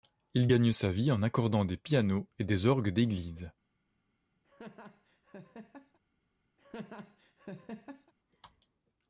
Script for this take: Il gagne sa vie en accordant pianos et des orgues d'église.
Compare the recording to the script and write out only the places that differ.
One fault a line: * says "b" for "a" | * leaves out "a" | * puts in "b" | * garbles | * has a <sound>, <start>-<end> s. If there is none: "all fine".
* puts in "des"
* has a laugh, 4.4-6.0 s
* has a laugh, 6.6-8.1 s